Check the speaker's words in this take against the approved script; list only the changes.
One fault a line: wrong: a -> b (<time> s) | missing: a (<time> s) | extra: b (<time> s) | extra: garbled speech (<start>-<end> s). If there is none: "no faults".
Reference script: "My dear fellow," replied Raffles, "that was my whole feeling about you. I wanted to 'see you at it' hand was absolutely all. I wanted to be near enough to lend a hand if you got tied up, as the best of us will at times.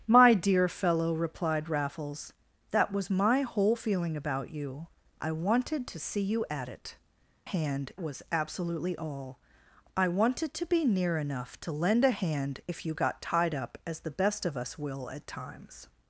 no faults